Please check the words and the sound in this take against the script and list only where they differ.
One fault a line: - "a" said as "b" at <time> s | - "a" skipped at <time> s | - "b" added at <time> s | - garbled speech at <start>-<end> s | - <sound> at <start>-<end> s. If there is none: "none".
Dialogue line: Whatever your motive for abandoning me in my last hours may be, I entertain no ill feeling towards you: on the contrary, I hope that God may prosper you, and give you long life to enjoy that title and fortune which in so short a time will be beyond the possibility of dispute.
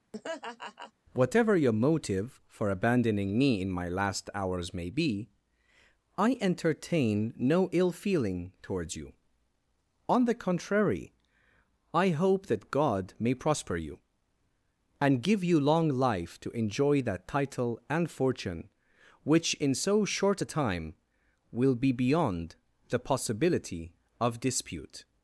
- laugh at 0.1-0.9 s